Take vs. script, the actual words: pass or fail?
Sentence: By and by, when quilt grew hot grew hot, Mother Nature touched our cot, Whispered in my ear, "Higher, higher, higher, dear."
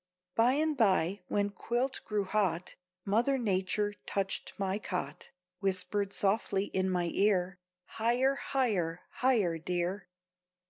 fail